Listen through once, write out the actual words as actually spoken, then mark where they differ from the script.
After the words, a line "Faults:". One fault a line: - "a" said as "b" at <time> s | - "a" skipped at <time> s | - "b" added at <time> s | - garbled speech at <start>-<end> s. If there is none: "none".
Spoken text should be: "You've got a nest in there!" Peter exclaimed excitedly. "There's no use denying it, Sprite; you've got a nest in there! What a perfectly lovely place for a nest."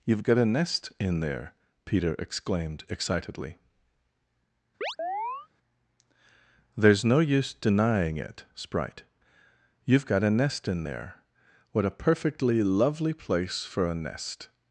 "You've got a nest in there!" Peter exclaimed excitedly. "There's no use denying it, Sprite; you've got a nest in there! What a perfectly lovely place for a nest."
Faults:
none